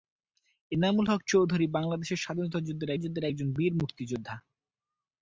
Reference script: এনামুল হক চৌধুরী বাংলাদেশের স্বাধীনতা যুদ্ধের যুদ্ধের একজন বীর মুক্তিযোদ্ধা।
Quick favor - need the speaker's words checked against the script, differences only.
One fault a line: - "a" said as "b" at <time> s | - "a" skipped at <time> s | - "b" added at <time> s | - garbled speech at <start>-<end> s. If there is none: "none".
none